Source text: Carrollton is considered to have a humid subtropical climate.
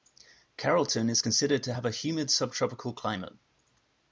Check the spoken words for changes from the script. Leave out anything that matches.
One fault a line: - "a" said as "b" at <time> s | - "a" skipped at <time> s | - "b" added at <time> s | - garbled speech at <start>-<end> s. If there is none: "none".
none